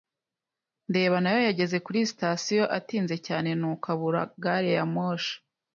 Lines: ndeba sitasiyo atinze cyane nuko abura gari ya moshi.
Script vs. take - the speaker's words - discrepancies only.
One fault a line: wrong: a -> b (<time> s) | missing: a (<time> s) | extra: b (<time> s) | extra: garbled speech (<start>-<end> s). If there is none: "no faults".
extra: nayo yageze kuri (1.2 s)